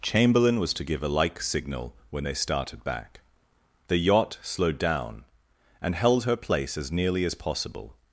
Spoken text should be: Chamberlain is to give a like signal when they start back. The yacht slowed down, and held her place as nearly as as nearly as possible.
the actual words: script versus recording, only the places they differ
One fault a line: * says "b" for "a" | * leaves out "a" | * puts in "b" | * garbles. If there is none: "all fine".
* says "was" for "is"
* says "started" for "start"
* leaves out "as nearly as"